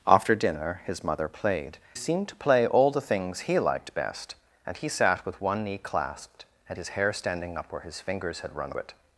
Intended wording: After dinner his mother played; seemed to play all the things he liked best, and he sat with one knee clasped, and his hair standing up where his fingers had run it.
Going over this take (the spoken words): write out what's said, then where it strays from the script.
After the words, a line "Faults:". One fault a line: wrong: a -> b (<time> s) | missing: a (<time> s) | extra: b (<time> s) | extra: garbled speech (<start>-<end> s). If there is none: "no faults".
After dinner his mother played; seemed to play all the things he liked best, and he sat with one knee clasped, and his hair standing up where his fingers had run it.
Faults:
no faults